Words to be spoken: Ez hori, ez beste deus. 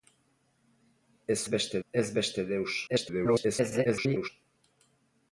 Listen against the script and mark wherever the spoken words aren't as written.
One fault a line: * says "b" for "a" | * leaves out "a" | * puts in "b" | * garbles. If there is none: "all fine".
* says "beste" for "hori"
* garbles